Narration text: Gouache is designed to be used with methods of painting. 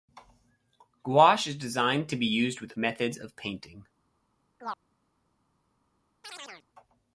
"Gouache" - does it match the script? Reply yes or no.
yes